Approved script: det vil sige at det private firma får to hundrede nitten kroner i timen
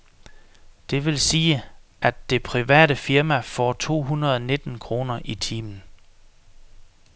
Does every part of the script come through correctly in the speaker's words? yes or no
yes